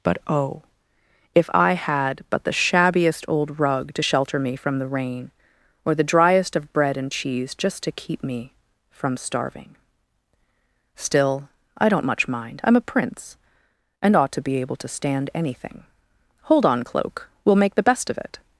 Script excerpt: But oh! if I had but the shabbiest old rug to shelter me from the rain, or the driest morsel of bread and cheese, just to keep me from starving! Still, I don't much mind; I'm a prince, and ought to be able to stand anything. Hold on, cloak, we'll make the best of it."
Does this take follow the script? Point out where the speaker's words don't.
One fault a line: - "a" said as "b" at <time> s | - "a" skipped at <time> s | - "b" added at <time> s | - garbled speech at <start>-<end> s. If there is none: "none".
- "morsel" skipped at 6.6 s